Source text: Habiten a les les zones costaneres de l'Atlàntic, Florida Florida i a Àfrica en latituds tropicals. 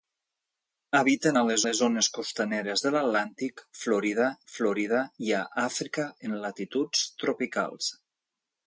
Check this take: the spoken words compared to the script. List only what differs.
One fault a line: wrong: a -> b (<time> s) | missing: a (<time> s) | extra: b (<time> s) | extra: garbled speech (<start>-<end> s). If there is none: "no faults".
no faults